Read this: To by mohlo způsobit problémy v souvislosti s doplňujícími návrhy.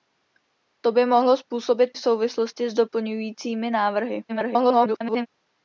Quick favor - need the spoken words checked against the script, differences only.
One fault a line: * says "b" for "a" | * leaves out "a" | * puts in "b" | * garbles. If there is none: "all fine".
* leaves out "problémy"
* garbles